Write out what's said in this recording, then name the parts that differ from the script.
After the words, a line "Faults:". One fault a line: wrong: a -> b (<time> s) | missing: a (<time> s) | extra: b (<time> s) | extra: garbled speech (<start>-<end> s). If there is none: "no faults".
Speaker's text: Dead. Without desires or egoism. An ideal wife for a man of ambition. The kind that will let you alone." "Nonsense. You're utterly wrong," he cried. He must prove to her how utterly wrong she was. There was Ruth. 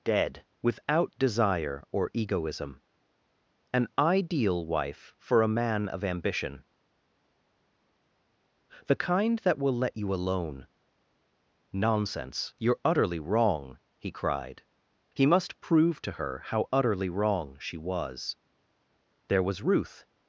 Dead. Without desire or egoism. An ideal wife for a man of ambition. The kind that will let you alone." "Nonsense. You're utterly wrong," he cried. He must prove to her how utterly wrong she was. There was Ruth.
Faults:
wrong: desires -> desire (1.2 s)